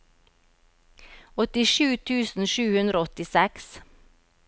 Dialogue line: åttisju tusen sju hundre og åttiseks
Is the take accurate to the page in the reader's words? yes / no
yes